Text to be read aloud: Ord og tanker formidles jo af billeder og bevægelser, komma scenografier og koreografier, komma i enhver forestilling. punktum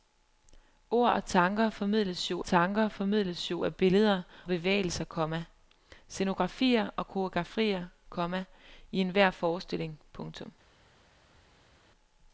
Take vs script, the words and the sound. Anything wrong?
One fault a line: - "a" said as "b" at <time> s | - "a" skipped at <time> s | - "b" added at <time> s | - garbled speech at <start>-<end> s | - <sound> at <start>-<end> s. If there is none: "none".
- "tanker formidles jo" added at 2.4 s
- "og" skipped at 4.2 s